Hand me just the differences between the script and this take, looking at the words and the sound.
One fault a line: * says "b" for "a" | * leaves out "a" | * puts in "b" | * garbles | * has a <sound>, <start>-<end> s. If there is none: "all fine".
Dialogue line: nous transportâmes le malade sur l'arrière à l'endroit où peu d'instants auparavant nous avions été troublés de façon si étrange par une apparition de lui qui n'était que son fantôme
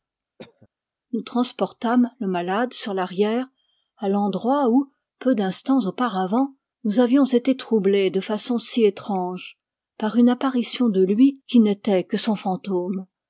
* has a cough, 0.4-0.7 s